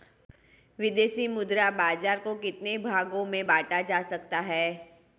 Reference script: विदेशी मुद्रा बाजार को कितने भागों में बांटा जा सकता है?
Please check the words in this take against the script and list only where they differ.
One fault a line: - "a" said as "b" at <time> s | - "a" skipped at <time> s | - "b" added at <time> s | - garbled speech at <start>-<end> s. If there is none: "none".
none